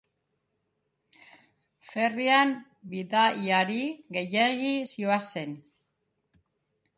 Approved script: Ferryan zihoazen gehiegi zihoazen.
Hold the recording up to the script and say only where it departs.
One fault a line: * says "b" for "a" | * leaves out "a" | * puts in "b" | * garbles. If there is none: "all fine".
* says "bidaiari" for "zihoazen"